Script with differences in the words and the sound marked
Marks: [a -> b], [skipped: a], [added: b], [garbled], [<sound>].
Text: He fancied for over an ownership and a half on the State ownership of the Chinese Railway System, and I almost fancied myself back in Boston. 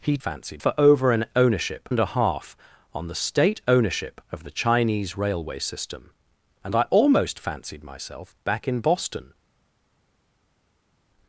He fancied for over an ownership and a half on the State ownership of the Chinese Railway System, and I almost fancied myself back in Boston.